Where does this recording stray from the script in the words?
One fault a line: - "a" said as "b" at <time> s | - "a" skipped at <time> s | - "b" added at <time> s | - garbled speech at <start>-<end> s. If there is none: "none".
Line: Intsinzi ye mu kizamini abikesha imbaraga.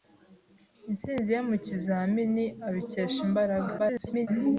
- garbled speech at 3.8-4.3 s